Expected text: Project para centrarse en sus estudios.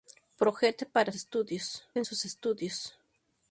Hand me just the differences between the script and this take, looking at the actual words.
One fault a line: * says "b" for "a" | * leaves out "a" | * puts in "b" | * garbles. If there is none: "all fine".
* says "estudios" for "centrarse"